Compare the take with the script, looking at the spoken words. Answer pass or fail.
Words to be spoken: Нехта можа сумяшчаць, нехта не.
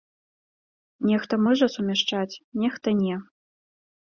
pass